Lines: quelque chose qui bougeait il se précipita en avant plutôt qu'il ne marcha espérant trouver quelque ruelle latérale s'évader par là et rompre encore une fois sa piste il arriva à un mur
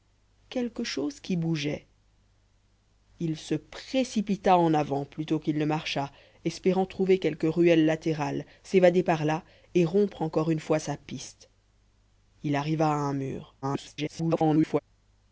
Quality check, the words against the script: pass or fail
fail